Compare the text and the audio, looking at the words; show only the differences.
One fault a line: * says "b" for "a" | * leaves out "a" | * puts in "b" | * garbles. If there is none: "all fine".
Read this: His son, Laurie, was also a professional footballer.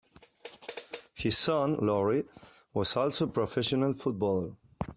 all fine